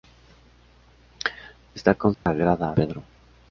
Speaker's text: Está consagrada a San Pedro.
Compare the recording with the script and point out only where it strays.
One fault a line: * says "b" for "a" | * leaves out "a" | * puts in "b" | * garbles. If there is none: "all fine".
* leaves out "San"